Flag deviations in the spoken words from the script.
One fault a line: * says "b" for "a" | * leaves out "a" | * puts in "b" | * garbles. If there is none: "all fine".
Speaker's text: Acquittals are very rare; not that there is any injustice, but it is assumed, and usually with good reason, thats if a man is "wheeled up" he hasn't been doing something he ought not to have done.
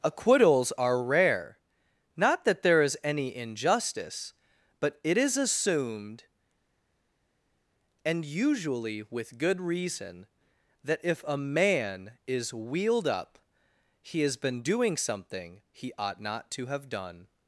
* leaves out "very"
* says "that" for "thats"
* says "has" for "hasn't"